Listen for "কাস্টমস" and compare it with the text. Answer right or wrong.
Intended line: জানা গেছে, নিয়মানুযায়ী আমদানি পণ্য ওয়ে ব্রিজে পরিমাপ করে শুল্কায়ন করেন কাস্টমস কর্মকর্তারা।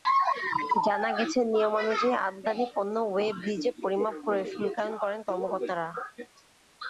wrong